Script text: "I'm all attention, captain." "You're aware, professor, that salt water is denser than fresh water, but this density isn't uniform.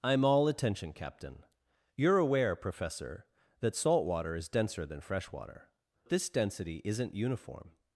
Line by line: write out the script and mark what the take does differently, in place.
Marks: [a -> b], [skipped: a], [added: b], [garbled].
"I'm all attention, captain." "You're aware, professor, that salt water is denser than fresh water, [skipped: but] this density isn't uniform.